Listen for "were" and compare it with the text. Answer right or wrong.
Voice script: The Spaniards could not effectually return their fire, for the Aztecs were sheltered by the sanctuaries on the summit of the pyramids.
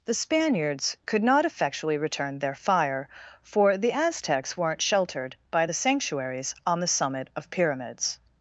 wrong